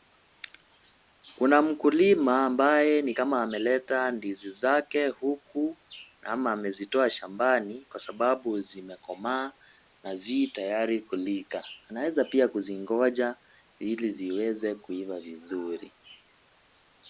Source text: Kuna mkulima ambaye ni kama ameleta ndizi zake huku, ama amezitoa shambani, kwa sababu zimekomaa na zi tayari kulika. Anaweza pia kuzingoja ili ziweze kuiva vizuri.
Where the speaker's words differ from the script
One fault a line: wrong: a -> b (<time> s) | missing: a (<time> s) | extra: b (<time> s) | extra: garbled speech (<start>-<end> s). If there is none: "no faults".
no faults